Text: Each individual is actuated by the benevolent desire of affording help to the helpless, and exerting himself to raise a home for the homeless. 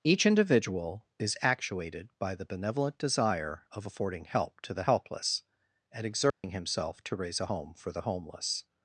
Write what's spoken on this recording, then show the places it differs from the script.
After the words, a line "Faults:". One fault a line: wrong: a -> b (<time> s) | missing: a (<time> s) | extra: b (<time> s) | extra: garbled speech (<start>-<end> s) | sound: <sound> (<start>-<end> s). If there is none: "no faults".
Each individual is actuated by the benevolent desire of affording help to the helpless, and exerting himself to raise a home for the homeless.
Faults:
sound: dropout (6.3-6.4 s)